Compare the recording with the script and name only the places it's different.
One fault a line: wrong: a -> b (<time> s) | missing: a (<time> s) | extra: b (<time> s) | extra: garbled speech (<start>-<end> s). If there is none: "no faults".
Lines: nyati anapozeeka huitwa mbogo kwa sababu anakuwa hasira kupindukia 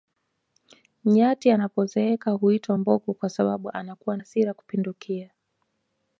no faults